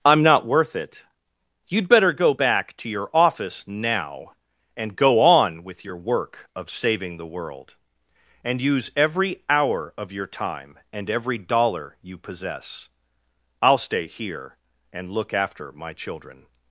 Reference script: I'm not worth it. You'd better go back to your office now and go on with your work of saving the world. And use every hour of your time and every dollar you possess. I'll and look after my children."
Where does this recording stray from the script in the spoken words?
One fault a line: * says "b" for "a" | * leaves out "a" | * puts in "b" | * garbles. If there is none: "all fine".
* puts in "stay here"